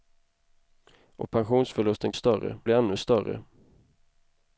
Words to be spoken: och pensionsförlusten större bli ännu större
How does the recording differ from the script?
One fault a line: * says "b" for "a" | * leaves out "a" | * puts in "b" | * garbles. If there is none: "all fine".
all fine